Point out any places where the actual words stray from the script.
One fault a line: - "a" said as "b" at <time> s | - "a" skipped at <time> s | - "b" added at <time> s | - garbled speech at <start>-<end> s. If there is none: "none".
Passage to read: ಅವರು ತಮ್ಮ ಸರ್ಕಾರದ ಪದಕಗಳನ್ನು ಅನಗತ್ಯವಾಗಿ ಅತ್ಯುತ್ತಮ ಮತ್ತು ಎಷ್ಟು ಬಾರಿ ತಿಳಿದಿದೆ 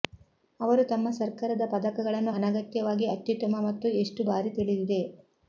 none